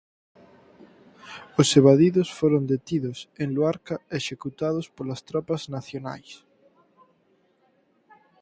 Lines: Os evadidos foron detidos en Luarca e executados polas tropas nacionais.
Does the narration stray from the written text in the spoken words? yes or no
no